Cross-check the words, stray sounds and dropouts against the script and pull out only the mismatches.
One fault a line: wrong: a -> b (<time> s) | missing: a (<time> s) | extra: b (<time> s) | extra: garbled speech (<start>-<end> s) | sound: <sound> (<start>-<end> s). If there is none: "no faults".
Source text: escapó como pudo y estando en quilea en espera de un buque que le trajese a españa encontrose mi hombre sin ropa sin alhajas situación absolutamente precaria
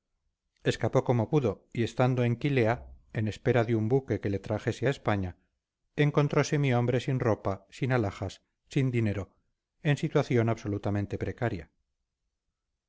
extra: sin dinero en (8.7 s)